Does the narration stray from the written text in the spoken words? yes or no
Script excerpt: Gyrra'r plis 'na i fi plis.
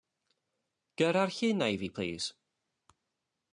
yes